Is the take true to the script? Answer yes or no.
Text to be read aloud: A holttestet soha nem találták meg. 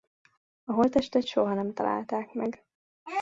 yes